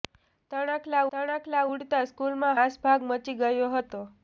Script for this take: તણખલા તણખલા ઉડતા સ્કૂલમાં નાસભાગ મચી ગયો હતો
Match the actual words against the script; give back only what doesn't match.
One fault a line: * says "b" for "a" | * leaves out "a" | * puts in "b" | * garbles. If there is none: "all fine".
all fine